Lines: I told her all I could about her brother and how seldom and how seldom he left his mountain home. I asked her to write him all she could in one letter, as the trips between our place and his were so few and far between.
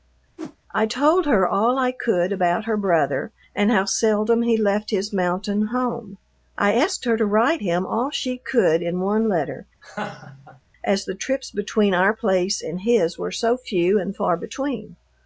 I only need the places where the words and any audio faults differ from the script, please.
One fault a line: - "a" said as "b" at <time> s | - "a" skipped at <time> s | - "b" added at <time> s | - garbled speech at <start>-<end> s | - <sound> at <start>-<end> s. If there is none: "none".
- whoosh at 0.4-0.6 s
- "and how seldom" skipped at 4.4 s
- laugh at 9.8-10.6 s